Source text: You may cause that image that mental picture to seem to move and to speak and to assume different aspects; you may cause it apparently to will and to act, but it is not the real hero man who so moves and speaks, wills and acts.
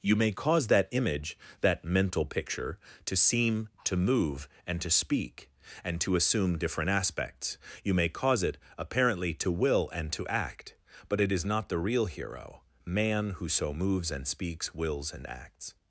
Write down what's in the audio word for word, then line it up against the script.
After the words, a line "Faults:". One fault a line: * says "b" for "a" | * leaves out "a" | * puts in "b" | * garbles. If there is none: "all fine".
You may cause that image that mental picture to seem to move and to speak and to assume different aspects; you may cause it apparently to will and to act, but it is not the real hero man who so moves and speaks, wills and acts.
Faults:
all fine